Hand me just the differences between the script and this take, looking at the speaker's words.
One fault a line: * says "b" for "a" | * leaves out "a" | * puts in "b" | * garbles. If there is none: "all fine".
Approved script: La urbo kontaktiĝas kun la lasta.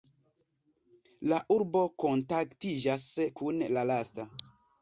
all fine